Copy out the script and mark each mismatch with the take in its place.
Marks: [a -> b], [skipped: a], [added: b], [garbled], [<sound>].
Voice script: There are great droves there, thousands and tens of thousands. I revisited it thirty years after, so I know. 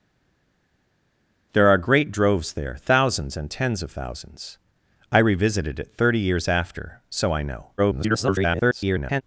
There are great droves there, thousands and tens of thousands. I revisited it thirty years after, so I know. [garbled]